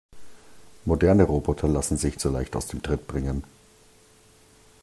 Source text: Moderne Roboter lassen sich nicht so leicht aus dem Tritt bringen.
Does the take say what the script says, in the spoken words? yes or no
no